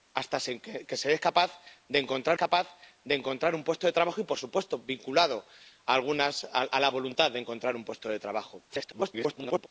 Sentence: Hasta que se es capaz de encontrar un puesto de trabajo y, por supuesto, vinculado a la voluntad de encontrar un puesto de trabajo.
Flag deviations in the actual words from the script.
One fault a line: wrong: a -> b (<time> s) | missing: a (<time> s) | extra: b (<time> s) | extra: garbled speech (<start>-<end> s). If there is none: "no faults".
extra: capaz de encontrar (2.3 s)
extra: garbled speech (8.7-9.7 s)